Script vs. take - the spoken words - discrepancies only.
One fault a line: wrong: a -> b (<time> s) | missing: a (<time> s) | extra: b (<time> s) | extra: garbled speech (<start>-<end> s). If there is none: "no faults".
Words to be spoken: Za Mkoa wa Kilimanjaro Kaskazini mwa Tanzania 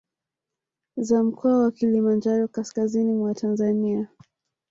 no faults